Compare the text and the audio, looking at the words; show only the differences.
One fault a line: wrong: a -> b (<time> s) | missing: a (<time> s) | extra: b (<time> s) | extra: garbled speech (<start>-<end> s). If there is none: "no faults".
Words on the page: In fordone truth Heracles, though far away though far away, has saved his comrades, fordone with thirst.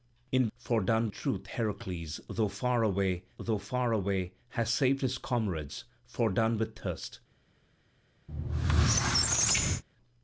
no faults